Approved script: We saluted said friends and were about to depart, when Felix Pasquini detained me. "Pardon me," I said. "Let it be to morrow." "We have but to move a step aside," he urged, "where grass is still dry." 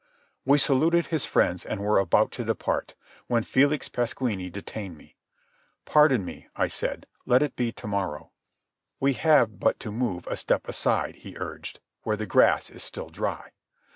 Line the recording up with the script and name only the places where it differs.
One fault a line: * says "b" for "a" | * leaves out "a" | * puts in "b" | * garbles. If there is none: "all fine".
* says "his" for "said"
* puts in "the"